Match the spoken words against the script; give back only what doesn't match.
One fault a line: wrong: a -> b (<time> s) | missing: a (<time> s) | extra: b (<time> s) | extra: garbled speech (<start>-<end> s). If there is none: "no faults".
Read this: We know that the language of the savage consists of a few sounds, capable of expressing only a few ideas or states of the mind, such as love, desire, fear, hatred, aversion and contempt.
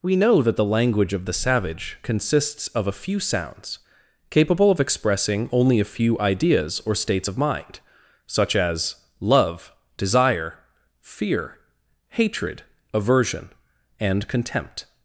missing: the (7.4 s)